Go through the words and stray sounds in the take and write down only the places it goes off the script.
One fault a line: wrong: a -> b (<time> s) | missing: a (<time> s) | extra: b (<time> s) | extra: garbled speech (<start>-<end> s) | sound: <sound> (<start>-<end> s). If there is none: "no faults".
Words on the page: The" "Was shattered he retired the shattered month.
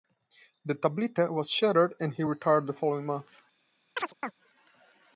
extra: Tablita (0.7 s)
extra: and (2.0 s)
wrong: shattered -> following (2.7 s)
sound: chirp (4.0-4.3 s)